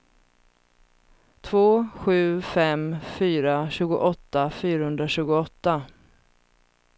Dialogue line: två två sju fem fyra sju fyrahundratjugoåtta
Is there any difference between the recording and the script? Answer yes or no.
yes